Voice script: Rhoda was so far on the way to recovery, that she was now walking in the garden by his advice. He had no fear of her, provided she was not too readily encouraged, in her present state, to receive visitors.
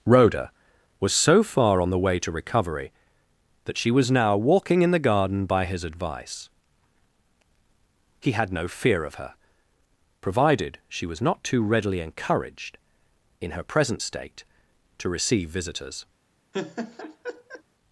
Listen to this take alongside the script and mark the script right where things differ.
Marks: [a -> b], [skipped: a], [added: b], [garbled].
Rhoda was so far on the way to recovery, that she was now walking in the garden by his advice. He had no fear of her, provided she was not too readily encouraged, in her present state, to receive visitors.